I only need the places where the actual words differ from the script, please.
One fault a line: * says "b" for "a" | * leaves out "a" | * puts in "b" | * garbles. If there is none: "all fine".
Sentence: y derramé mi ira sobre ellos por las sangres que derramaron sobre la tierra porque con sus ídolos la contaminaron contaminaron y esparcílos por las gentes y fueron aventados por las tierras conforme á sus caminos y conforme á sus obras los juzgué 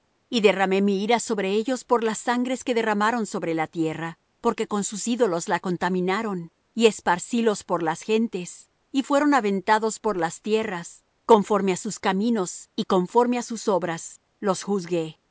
* leaves out "contaminaron"